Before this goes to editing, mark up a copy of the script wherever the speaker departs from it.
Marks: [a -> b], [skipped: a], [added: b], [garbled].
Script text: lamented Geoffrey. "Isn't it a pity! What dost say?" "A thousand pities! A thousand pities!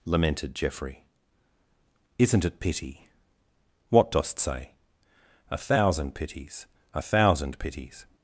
lamented Geoffrey. "Isn't it [skipped: a] pity! What dost say?" "A thousand pities! A thousand pities!